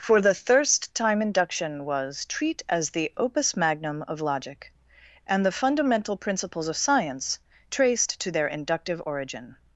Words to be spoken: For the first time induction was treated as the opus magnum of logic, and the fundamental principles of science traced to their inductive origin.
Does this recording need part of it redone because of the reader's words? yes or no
yes